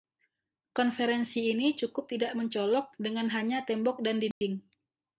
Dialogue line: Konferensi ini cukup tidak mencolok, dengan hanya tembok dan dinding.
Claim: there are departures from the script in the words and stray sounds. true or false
true